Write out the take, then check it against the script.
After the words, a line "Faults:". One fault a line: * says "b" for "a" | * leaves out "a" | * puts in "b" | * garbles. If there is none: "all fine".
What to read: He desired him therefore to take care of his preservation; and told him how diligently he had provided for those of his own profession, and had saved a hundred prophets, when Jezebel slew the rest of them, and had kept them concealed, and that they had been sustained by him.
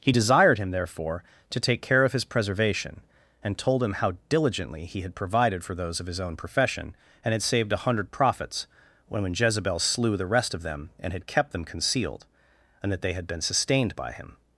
He desired him therefore to take care of his preservation; and told him how diligently he had provided for those of his own profession, and had saved a hundred prophets, when when Jezebel slew the rest of them, and had kept them concealed, and that they had been sustained by him.
Faults:
* puts in "when"